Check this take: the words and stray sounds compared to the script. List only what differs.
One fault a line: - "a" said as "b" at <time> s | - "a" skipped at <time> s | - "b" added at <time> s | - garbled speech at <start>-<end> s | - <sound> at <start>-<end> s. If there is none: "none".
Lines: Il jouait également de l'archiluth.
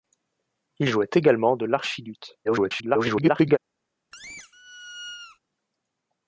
- garbled speech at 2.4-3.6 s
- squeak at 4.1-5.4 s